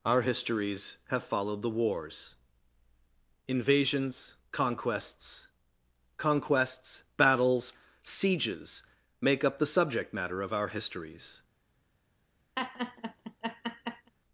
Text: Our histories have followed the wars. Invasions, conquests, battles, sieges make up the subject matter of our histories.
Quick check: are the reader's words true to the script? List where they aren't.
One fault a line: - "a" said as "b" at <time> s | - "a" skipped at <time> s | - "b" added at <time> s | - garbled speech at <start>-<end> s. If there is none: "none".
- "conquests" added at 6.2 s